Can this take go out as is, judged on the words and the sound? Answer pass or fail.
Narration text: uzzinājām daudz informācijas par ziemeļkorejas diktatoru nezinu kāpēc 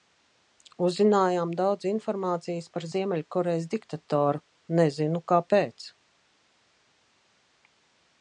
pass